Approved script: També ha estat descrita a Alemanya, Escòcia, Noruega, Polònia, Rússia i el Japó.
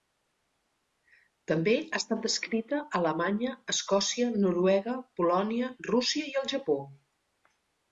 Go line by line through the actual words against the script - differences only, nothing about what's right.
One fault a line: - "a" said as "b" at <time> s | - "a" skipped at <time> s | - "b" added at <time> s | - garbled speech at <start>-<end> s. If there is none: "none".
none